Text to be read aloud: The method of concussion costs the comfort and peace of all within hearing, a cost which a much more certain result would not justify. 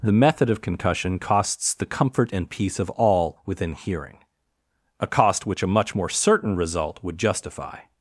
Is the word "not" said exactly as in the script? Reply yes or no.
no